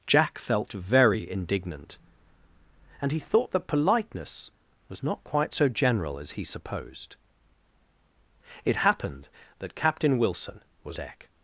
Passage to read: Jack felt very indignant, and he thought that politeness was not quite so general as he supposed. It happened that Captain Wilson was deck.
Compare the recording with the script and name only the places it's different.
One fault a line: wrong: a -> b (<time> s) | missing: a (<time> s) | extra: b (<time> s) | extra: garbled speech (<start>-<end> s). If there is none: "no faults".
no faults